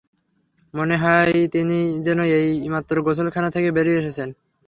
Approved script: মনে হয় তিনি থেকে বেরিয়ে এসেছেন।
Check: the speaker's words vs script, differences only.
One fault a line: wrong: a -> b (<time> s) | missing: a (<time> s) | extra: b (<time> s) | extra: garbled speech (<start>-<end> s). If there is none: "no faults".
extra: যেন এইমাত্র গোসলখানা (2.0 s)